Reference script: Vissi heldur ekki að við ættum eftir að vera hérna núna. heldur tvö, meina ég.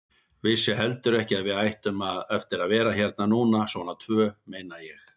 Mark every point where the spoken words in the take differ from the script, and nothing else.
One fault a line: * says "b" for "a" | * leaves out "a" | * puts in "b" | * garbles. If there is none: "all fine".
* says "svona" for "heldur"